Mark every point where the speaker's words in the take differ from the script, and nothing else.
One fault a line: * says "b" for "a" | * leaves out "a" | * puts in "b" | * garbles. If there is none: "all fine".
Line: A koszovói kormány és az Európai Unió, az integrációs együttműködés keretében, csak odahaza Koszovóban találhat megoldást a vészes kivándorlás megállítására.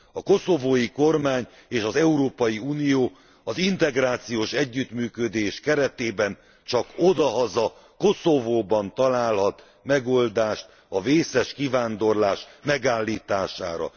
all fine